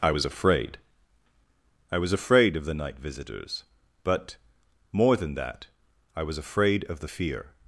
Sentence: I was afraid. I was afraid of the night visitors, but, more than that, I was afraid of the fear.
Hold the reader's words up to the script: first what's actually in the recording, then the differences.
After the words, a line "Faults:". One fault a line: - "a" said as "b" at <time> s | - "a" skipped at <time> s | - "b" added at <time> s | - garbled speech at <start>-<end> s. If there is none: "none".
I was afraid. I was afraid of the night visitors, but, more than that, I was afraid of the fear.
Faults:
none